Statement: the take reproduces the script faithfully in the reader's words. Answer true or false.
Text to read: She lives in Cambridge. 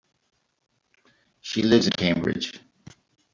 false